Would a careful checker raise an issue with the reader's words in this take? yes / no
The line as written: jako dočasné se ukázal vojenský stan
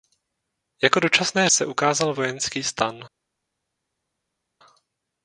no